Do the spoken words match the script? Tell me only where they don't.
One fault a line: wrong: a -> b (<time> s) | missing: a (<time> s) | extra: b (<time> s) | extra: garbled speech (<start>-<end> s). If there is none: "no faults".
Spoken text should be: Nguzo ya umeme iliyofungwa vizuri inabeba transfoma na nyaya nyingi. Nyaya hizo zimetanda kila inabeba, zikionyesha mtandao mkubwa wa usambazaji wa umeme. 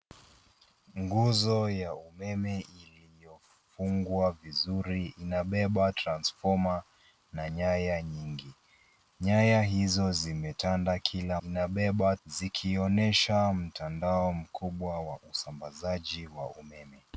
no faults